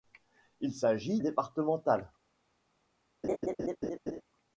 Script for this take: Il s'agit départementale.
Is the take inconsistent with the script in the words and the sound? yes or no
yes